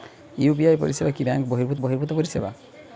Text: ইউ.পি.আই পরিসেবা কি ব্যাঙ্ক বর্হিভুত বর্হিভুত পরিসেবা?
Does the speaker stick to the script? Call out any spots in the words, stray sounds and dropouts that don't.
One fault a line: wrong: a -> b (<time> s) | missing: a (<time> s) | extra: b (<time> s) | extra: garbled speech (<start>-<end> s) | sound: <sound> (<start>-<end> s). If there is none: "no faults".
no faults